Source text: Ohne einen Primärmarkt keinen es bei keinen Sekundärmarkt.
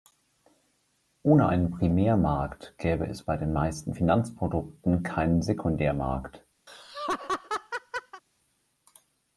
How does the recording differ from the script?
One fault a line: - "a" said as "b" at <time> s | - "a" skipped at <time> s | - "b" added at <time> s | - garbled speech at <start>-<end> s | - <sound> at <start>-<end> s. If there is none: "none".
- "keinen" said as "gäbe" at 2.8 s
- "den meisten Finanzprodukten" added at 3.4 s
- laugh at 6.7-8.2 s